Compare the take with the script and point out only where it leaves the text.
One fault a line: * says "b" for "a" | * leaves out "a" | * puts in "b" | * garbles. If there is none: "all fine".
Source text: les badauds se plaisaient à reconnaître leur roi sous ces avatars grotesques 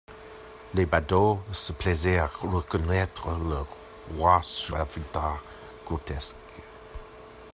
* leaves out "ces"